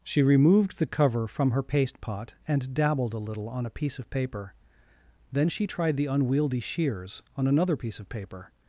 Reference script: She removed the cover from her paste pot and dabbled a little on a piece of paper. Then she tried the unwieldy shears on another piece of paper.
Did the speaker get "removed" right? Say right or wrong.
right